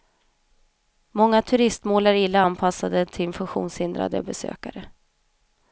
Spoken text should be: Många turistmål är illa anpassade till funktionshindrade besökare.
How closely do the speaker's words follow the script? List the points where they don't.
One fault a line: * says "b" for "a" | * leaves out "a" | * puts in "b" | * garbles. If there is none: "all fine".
all fine